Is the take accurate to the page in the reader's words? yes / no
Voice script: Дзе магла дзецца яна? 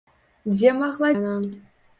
no